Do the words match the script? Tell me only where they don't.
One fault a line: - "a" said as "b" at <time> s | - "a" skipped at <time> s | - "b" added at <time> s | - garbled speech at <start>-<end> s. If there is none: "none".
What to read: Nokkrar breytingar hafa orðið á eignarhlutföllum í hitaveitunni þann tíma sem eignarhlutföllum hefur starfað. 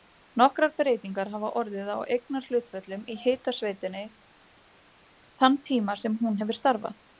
- "eignarhlutföllum" said as "hún" at 6.3 s